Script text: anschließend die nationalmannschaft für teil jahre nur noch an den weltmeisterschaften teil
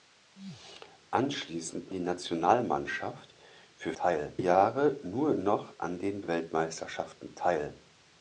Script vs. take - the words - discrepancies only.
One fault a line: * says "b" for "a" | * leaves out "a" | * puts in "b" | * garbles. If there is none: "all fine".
all fine